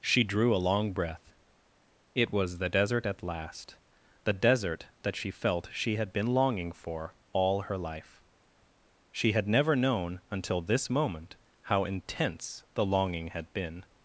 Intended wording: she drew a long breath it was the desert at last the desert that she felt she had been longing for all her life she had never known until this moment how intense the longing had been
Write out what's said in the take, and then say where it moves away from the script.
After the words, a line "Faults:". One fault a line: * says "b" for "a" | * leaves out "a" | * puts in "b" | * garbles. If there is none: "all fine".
she drew a long breath it was the desert at last the desert that she felt she had been longing for all her life she had never known until this moment how intense the longing had been
Faults:
all fine